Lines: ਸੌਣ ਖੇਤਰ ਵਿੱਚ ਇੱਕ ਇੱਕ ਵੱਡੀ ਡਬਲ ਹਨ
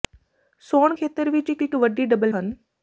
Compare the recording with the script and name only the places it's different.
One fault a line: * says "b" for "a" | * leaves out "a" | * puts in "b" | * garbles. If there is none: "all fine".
all fine